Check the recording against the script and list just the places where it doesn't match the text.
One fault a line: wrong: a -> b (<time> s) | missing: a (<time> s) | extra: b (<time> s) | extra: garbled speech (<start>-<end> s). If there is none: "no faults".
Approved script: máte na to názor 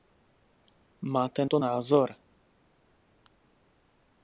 missing: na (1.4 s)